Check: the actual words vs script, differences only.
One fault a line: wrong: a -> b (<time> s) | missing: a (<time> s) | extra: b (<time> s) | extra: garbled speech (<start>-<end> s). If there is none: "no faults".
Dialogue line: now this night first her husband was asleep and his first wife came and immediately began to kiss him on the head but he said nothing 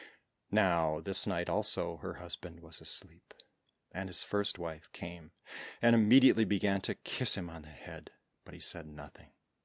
wrong: first -> also (1.5 s)